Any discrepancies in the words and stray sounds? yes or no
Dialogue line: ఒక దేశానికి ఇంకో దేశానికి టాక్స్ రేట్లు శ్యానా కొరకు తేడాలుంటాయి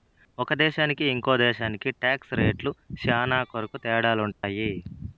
yes